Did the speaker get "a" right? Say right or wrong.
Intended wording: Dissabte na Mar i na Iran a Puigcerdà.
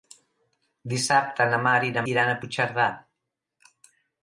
right